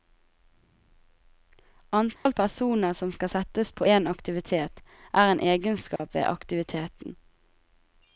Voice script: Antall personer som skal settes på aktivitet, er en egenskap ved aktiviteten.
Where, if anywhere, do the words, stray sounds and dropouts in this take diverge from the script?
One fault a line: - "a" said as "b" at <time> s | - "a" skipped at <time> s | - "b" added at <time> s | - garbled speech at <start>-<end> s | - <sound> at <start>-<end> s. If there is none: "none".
- dropout at 2.2-2.3 s
- "en" added at 3.8 s
- dropout at 6.0-6.0 s